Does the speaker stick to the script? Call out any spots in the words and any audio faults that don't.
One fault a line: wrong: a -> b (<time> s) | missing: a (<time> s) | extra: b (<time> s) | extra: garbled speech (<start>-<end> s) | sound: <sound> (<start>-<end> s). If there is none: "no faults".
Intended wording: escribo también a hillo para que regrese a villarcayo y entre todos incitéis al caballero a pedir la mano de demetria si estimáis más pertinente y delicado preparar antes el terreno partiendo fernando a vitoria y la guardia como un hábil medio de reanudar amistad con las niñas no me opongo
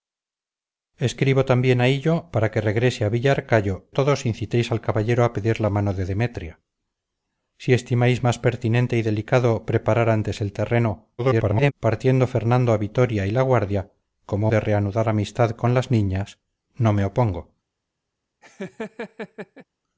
missing: y entre (3.9 s)
extra: garbled speech (11.2-11.7 s)
missing: un hábil medio (14.5 s)
sound: laugh (18.4-19.7 s)